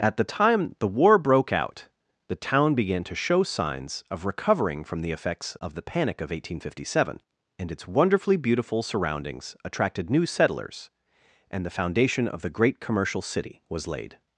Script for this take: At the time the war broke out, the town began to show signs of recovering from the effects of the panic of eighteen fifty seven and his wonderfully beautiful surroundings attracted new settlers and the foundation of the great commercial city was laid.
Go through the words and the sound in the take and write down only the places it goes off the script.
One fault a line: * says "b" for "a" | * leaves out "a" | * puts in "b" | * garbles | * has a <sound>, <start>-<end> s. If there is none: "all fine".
* says "its" for "his"